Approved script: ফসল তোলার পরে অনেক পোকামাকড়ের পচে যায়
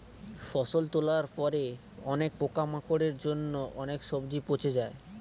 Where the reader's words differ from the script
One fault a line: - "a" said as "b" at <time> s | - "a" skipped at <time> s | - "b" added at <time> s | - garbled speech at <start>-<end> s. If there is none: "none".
- "জন্য অনেক সবজি" added at 3.2 s